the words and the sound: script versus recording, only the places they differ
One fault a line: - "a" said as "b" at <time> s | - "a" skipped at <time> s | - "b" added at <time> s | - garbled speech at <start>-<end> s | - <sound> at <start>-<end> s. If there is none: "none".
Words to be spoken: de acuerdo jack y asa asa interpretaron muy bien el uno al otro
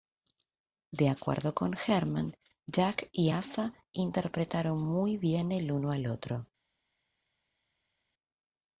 - "con herman" added at 1.5 s
- "asa" skipped at 3.7 s